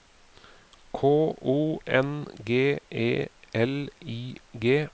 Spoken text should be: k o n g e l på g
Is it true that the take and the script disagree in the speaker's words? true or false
true